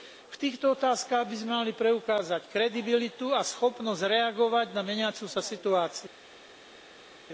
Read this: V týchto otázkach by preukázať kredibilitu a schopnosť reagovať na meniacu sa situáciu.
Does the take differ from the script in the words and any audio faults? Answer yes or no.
yes